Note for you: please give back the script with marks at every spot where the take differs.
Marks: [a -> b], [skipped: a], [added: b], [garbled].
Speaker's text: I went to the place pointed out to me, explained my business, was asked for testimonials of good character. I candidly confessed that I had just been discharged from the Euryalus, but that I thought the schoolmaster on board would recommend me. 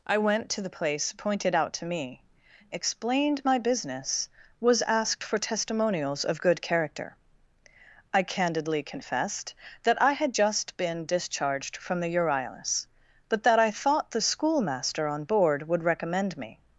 I went to the place pointed out to me, explained my business, was asked for testimonials of good character. I candidly confessed that I had just been discharged from the Euryalus, but that I thought the schoolmaster on board would recommend me.